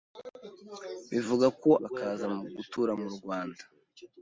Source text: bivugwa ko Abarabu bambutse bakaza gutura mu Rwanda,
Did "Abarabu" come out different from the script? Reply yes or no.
yes